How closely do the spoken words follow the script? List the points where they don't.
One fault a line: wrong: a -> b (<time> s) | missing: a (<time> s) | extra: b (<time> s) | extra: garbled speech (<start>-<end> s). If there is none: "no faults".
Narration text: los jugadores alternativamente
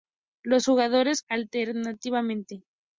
no faults